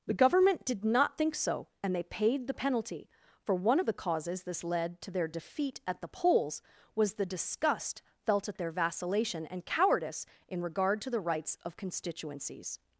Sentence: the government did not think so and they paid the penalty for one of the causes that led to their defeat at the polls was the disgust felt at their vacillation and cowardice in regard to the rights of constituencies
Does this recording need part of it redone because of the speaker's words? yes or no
yes